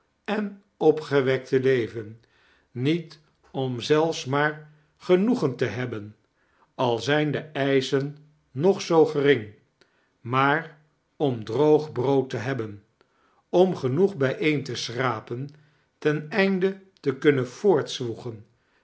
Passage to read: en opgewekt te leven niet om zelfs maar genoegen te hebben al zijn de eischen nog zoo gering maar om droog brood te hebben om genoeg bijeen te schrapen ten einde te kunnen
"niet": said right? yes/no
yes